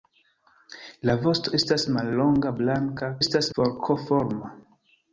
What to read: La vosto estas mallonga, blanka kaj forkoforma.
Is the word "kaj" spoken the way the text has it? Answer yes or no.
no